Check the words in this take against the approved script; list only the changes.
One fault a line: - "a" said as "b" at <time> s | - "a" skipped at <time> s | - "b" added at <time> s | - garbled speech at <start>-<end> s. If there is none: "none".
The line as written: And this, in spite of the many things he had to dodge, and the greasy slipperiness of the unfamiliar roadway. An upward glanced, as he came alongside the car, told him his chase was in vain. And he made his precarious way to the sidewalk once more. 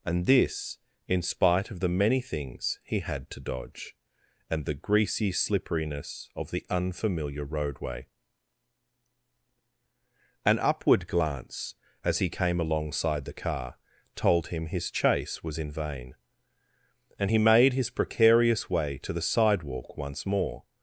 - "glanced" said as "glance" at 11.1 s